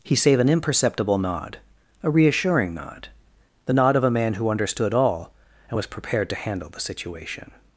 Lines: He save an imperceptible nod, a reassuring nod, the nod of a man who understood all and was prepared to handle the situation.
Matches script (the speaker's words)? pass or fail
pass